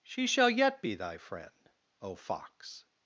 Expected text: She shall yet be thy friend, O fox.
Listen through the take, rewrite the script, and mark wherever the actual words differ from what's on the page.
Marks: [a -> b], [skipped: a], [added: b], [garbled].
She shall yet be thy friend, O fox.